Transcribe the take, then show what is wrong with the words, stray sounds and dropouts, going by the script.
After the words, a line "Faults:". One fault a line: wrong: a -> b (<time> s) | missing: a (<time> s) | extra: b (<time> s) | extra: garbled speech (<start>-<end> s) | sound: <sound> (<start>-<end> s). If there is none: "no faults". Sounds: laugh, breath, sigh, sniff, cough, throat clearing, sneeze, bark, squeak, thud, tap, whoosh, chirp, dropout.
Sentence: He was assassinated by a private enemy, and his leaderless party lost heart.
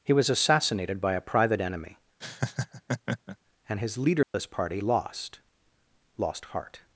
He was assassinated by a private enemy, and his leaderless party lost lost heart.
Faults:
sound: laugh (2.2-3.4 s)
sound: dropout (4.2-4.3 s)
extra: lost (6.2 s)